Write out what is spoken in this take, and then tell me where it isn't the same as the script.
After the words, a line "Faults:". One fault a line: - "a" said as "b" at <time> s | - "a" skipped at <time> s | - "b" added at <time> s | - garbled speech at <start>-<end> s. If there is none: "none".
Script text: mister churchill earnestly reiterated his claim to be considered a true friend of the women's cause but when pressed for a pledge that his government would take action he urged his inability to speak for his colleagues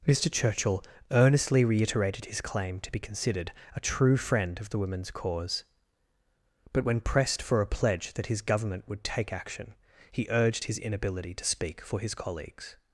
mister churchill earnestly reiterated his claim to be considered a true friend of the women's cause but when pressed for a pledge that his government would take action he urged his inability to speak for his colleagues
Faults:
none